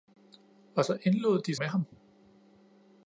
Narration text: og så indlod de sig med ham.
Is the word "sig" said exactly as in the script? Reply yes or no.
no